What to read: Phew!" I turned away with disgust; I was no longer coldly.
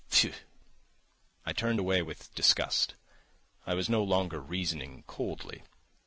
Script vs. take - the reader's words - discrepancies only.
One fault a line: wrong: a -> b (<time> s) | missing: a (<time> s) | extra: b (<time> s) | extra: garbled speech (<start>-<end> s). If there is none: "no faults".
extra: reasoning (4.4 s)